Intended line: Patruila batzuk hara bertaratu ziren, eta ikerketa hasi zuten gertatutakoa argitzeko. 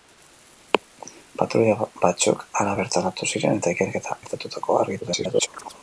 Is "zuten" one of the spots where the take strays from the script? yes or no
yes